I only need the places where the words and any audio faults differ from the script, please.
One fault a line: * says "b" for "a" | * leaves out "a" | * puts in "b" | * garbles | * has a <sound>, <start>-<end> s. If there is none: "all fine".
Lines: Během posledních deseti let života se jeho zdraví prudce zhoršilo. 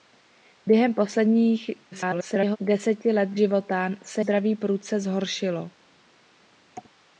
* garbles
* leaves out "jeho"